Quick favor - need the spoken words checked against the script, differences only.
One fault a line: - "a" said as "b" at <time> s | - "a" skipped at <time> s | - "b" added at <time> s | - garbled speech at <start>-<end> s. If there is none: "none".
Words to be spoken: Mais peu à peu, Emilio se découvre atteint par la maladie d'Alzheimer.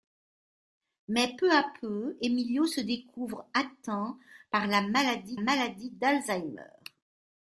- "maladie" added at 5.3 s